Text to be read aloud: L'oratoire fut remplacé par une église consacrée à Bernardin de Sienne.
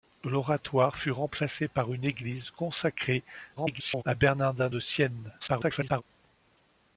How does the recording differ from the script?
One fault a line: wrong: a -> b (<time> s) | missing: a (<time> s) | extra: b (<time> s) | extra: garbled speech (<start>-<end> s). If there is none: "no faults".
extra: garbled speech (3.6-4.0 s)
extra: garbled speech (5.4-6.0 s)